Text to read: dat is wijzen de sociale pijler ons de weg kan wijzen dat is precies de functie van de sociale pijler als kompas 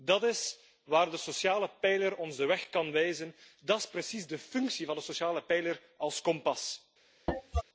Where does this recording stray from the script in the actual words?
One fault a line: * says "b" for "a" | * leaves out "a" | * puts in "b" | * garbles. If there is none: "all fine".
* says "waar" for "wijzen"